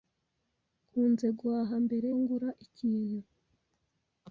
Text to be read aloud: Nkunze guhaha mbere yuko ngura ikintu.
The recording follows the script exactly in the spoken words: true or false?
false